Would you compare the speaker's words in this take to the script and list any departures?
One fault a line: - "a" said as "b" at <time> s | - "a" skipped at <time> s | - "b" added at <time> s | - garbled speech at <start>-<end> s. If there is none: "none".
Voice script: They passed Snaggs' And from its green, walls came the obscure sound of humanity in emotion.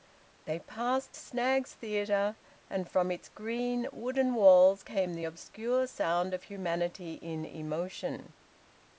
- "Theatre" added at 1.8 s
- "wooden" added at 3.9 s